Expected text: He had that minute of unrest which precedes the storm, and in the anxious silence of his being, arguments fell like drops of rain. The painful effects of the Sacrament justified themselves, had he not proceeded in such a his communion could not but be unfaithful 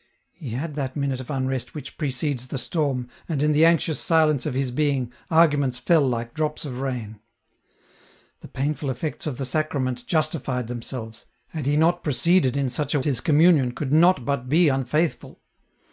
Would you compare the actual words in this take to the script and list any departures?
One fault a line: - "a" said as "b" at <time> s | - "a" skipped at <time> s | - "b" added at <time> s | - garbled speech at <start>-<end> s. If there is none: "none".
none